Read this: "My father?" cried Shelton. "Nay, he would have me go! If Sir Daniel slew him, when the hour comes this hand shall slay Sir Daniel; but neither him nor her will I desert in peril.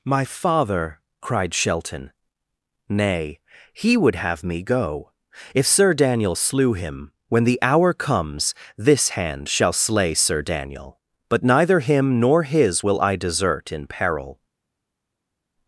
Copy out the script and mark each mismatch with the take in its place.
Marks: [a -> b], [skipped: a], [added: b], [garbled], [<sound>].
"My father?" cried Shelton. "Nay, he would have me go! If Sir Daniel slew him, when the hour comes this hand shall slay Sir Daniel; but neither him nor [her -> his] will I desert in peril.